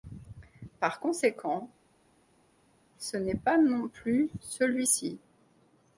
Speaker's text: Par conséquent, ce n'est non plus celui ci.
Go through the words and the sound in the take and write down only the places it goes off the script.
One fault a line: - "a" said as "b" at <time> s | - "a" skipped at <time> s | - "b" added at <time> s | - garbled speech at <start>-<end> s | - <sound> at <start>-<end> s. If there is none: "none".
- "pas" added at 3.3 s